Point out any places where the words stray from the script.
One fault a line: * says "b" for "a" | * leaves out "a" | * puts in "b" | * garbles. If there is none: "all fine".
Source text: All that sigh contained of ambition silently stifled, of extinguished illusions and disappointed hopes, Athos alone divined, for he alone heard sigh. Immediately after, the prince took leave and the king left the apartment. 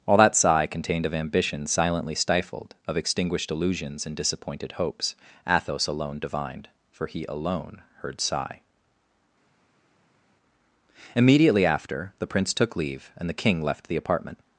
all fine